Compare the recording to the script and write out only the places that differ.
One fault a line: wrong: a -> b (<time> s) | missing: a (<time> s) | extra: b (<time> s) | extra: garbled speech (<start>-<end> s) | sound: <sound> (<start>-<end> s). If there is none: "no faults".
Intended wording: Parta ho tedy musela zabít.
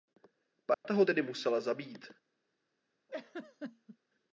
sound: dropout (0.7-0.8 s)
sound: laugh (3.1-4.0 s)